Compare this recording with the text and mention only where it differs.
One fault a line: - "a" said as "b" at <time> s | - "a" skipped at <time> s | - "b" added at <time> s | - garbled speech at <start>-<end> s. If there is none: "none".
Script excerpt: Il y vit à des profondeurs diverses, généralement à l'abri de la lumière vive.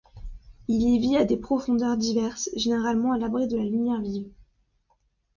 none